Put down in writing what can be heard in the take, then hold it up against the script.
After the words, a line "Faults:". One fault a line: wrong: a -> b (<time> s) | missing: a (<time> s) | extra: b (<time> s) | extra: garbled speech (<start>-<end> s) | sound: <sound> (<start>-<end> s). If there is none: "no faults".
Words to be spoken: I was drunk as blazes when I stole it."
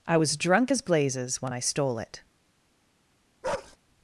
I was drunk as blazes when I stole it."
Faults:
sound: bark (3.4-3.8 s)